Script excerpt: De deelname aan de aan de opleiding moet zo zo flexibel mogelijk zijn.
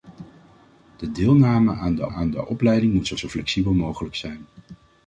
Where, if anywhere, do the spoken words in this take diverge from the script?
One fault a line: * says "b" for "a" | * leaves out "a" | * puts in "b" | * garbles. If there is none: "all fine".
all fine